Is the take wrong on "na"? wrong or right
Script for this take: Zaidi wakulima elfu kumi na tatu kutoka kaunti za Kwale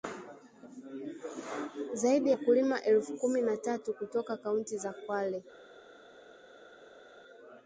right